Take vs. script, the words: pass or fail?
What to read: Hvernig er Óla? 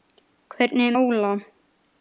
pass